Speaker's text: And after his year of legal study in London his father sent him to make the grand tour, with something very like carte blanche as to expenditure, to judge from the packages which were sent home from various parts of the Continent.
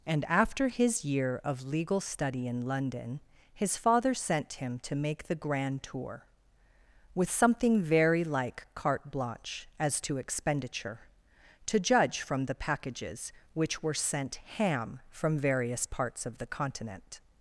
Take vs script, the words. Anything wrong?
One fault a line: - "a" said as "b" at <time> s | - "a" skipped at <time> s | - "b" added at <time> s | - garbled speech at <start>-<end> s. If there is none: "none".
- "home" said as "ham" at 14.6 s